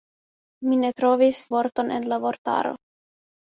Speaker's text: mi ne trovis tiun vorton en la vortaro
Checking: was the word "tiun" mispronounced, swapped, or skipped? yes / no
yes